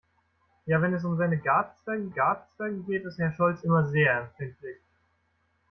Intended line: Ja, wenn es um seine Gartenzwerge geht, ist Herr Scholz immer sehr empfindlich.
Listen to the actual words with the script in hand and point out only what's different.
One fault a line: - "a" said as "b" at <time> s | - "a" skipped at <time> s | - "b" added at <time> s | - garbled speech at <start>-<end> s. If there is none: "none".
- "Gartenzwerge" added at 2.1 s